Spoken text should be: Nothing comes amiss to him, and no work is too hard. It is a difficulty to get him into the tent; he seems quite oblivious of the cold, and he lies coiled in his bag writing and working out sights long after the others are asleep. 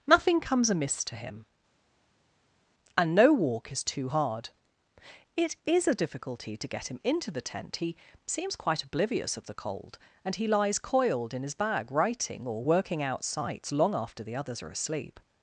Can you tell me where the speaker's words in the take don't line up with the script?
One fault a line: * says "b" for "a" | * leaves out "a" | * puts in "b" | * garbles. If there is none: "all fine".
* says "walk" for "work"
* says "or" for "and"